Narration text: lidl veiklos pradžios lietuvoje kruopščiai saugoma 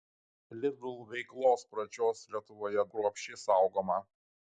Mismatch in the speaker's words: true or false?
false